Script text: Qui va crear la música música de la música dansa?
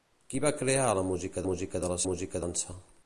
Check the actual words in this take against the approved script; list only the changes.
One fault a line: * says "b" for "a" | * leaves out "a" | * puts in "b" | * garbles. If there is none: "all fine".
all fine